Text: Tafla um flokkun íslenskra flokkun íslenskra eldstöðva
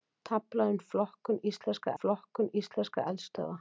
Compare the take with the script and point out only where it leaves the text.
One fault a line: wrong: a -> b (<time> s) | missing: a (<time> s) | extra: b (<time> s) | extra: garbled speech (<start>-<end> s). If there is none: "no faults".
no faults